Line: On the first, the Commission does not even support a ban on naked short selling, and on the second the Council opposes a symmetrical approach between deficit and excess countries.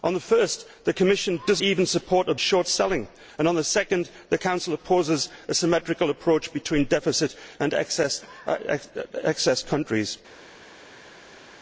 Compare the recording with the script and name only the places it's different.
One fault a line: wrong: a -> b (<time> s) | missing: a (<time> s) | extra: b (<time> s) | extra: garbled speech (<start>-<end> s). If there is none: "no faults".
missing: not (1.6 s)
missing: ban on naked (2.3 s)